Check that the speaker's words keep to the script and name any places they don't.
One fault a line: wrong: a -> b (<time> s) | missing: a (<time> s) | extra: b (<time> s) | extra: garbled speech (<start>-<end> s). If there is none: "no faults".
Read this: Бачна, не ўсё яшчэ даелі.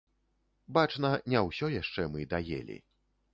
extra: мы (2.1 s)